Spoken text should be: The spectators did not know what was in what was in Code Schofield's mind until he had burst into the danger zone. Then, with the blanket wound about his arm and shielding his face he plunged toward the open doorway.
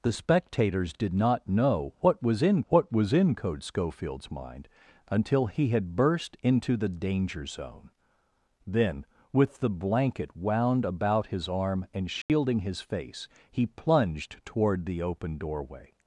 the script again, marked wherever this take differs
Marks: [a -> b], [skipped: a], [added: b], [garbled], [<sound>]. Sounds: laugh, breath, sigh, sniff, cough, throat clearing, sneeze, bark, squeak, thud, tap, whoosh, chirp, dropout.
The spectators did not know what was in what was in Code Schofield's mind until he had burst into the danger zone. Then, with the blanket wound about his arm and shielding [dropout] his face he plunged toward the open doorway.